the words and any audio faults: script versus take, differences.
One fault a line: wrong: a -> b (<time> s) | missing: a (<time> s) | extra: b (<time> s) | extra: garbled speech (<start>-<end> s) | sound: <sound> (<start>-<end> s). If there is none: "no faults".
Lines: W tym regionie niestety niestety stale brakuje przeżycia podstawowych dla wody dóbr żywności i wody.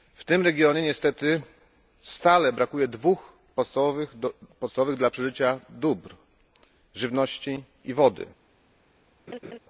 missing: niestety (1.4 s)
wrong: przeżycia -> dwóch (2.9 s)
wrong: wody -> przeżycia (5.1 s)
sound: laugh (9.3-9.6 s)